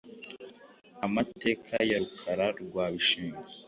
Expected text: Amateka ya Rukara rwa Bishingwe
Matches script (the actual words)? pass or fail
pass